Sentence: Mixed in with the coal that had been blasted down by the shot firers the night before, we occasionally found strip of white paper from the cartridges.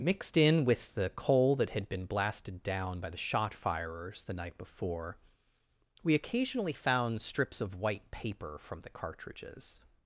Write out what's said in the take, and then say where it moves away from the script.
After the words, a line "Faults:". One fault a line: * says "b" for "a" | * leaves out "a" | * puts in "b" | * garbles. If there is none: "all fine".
Mixed in with the coal that had been blasted down by the shot firers the night before, we occasionally found strips of white paper from the cartridges.
Faults:
* says "strips" for "strip"